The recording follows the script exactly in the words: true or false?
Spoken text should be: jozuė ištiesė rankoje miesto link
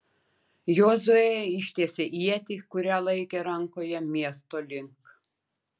false